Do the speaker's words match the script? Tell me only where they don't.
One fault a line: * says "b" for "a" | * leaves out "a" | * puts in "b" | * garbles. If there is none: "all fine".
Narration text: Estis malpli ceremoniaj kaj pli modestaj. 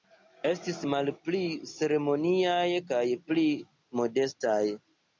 all fine